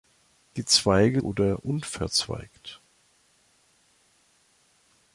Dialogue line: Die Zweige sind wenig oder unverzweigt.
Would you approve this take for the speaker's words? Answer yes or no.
no